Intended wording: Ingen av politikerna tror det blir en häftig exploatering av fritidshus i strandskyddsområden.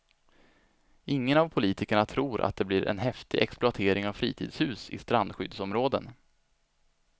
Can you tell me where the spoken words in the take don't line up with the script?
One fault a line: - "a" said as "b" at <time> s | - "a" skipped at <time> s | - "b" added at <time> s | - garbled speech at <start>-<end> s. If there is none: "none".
- "att" added at 2.4 s